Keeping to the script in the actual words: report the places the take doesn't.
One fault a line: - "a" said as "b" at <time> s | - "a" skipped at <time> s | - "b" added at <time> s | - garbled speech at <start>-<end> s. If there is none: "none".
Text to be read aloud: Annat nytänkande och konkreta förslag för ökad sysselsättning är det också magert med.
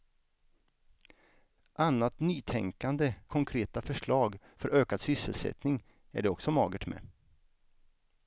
- "och" skipped at 3.1 s